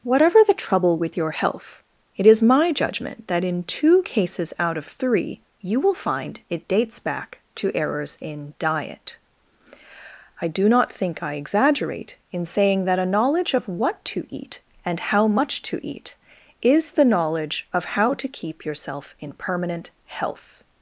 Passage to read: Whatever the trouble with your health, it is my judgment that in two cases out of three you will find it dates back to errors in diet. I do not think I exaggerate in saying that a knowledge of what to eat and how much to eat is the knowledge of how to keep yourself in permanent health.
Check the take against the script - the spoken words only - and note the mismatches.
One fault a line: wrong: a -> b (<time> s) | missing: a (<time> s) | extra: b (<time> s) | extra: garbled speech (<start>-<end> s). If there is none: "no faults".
no faults